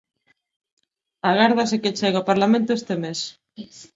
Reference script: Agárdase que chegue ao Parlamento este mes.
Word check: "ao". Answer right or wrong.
right